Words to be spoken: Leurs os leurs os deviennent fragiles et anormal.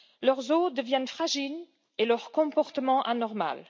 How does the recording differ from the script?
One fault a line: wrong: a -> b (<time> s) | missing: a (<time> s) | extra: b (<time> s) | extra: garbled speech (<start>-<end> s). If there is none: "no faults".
missing: leurs os (0.7 s)
extra: leur comportement (2.0 s)